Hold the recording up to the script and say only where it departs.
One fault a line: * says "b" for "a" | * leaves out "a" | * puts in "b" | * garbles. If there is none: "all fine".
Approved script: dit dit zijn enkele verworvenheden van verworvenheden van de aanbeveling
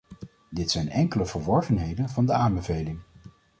* leaves out "dit"
* leaves out "verworvenheden van"